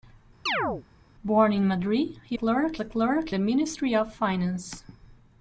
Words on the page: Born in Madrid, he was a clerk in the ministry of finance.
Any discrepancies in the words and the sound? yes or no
yes